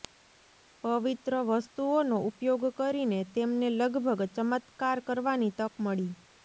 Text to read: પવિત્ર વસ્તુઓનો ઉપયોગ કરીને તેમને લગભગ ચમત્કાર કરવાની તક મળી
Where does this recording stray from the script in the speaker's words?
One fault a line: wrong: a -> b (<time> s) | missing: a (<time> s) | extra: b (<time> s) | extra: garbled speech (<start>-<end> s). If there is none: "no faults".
no faults